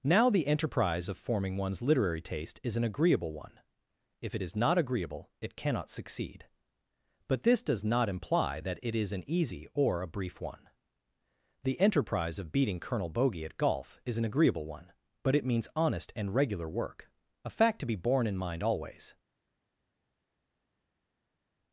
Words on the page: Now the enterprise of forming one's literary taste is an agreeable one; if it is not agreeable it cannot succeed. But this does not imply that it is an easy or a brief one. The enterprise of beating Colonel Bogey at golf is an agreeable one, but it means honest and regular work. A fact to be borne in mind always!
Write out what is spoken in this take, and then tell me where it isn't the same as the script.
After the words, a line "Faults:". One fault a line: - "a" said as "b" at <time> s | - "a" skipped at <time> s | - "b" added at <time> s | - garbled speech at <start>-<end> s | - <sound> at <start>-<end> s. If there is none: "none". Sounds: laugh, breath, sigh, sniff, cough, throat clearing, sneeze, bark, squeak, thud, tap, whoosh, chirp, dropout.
Now the enterprise of forming one's literary taste is an agreeable one; if it is not agreeable it cannot succeed. But this does not imply that it is an easy or a brief one. The enterprise of beating Colonel Bogey at golf is an agreeable one, but it means honest and regular work. A fact to be borne in mind always!
Faults:
none